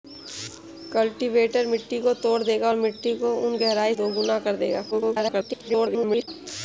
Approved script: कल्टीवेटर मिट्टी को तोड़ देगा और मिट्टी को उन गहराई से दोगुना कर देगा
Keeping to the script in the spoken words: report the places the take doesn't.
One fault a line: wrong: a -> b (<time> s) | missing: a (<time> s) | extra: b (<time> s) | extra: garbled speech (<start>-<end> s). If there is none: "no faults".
missing: से (3.9 s)
extra: garbled speech (4.9-6.3 s)